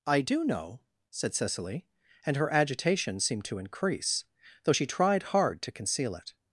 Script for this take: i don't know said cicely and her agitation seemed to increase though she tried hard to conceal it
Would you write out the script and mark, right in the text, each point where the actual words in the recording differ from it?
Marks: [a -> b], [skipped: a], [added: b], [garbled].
i [don't -> do] know said cicely and her agitation seemed to increase though she tried hard to conceal it